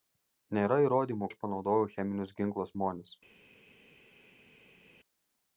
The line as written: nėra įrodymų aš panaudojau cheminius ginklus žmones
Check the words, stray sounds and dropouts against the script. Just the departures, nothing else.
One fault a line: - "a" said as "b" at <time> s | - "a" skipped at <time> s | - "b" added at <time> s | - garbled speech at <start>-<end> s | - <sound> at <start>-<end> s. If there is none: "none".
none